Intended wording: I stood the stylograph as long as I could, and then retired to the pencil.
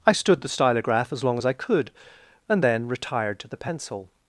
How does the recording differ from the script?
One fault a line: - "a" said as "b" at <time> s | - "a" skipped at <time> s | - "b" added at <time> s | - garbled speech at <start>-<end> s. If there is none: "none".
none